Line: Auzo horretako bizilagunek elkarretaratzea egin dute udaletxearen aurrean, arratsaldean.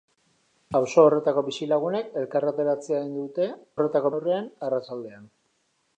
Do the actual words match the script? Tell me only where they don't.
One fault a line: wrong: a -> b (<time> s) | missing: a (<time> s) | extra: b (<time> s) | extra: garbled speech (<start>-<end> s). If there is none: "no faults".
wrong: udaletxearen -> horretako (3.8 s)